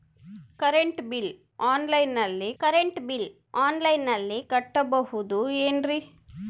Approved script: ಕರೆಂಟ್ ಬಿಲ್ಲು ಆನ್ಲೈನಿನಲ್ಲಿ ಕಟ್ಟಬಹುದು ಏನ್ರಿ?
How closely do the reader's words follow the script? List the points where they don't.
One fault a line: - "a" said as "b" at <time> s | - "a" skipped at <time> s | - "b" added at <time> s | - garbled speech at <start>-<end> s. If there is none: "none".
- "ಕರೆಂಟ್ ಬಿಲ್ಲು ಆನ್ಲೈನಿನಲ್ಲಿ" added at 2.6 s